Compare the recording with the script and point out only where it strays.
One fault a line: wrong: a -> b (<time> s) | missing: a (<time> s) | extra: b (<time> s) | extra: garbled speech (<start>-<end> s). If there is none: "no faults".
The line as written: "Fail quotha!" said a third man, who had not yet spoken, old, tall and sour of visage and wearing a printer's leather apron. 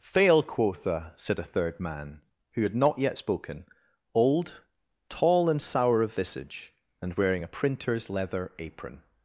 no faults